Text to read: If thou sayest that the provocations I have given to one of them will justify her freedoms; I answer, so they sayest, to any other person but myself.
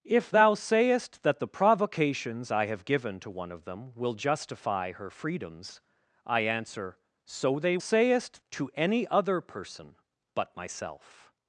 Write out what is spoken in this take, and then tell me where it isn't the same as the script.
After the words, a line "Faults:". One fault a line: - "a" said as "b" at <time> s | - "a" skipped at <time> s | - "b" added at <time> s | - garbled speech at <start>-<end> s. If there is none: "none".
If thou sayest that the provocations I have given to one of them will justify her freedoms; I answer, so they sayest, to any other person but myself.
Faults:
none